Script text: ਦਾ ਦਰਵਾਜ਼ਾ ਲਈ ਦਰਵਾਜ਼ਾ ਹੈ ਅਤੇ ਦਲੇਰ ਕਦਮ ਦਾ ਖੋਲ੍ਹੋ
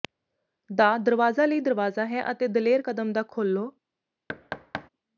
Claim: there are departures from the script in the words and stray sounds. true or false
true